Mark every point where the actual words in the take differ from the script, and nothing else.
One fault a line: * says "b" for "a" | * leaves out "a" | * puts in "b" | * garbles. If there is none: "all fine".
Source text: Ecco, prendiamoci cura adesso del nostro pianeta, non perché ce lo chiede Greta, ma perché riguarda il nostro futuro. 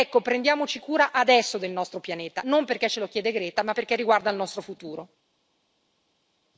all fine